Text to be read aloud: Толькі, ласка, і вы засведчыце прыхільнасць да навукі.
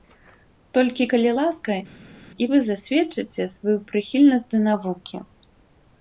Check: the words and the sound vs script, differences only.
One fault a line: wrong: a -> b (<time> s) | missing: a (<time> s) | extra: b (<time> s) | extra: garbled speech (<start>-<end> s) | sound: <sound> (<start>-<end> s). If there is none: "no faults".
extra: калі (1.1 s)
extra: сваю (3.6 s)